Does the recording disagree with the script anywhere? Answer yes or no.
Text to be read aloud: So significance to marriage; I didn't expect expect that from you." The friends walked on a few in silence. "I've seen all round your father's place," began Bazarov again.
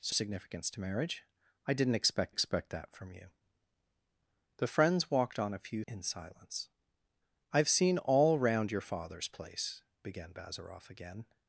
no